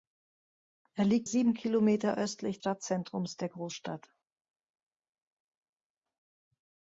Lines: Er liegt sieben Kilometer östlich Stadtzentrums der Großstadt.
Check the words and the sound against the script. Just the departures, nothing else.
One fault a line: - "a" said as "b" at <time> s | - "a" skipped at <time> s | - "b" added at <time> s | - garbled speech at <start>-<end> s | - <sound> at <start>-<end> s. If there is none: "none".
none